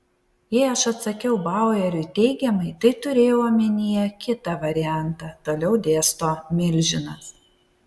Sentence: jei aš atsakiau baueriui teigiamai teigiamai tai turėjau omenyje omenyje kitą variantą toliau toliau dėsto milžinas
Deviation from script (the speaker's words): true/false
true